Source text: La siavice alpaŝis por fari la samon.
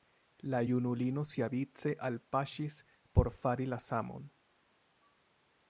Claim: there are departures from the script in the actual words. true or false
true